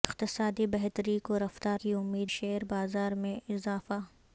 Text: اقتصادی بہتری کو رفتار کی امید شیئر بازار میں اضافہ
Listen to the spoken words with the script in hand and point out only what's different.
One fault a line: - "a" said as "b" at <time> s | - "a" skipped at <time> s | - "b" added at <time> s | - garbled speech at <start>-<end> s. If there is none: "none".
none